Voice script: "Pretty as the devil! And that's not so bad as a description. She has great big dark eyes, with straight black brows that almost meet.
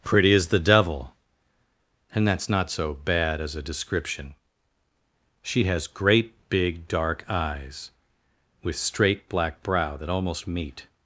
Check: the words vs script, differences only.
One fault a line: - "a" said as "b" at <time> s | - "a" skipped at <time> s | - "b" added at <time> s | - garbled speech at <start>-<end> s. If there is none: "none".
- "brows" said as "brow" at 9.6 s